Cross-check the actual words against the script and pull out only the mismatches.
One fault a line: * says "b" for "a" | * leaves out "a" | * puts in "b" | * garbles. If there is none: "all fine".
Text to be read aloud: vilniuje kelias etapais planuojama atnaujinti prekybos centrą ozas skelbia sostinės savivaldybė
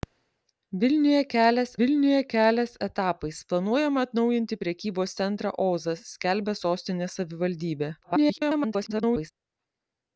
* puts in "vilniuje kelias"
* garbles